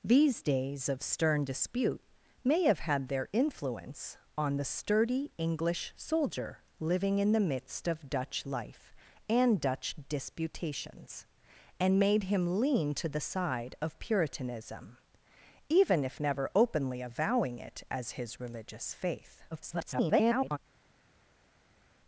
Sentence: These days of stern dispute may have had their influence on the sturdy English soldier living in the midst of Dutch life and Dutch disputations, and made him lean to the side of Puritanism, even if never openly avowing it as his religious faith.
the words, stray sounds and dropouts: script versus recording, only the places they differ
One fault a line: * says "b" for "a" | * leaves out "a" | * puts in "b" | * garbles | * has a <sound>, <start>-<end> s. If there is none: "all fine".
* garbles